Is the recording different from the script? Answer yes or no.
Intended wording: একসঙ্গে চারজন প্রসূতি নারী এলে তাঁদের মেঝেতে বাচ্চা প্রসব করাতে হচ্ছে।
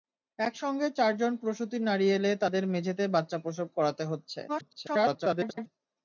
yes